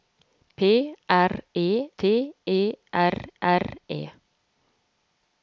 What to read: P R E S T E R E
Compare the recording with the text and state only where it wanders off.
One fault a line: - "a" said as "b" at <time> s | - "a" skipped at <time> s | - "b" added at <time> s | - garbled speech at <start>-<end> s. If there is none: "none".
- "S" skipped at 1.9 s
- "R" added at 3.4 s